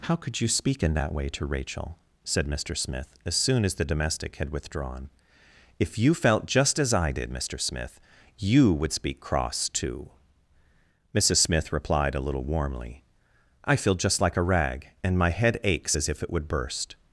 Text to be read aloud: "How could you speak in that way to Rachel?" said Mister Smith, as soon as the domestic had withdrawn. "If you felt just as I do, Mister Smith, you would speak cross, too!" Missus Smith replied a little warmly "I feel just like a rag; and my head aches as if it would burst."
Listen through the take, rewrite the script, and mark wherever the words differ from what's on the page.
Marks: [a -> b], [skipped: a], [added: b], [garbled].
"How could you speak in that way to Rachel?" said Mister Smith, as soon as the domestic had withdrawn. "If you felt just as I [do, -> did] Mister Smith, you would speak cross, too!" Missus Smith replied a little warmly "I feel just like a rag; and my head aches as if it would burst."